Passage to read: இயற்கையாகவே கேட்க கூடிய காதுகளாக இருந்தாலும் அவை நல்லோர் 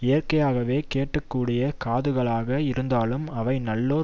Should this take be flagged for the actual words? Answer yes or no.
no